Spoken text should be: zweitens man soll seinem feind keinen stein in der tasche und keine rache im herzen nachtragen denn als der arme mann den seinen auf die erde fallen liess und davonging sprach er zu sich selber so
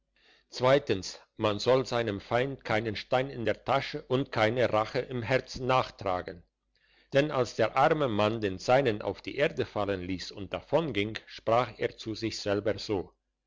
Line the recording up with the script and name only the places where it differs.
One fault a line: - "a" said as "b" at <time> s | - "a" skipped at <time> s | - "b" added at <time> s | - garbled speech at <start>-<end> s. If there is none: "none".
none